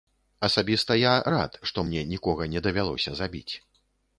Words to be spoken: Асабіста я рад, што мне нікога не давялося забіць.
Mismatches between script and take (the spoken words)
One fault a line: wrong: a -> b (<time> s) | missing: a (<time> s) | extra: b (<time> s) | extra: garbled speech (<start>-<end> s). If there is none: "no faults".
no faults